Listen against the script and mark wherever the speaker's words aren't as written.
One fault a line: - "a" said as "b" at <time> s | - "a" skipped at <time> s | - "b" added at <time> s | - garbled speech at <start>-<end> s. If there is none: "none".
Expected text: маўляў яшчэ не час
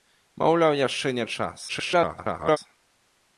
- garbled speech at 1.7-2.6 s